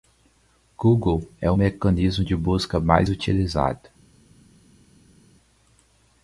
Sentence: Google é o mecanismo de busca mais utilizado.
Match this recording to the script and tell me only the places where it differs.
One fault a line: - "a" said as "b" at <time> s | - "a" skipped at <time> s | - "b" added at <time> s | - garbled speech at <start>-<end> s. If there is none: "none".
none